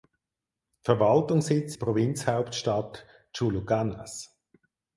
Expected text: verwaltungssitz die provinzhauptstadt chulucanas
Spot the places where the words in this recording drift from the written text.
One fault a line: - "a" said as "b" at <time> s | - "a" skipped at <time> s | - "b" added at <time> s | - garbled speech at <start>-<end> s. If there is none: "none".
none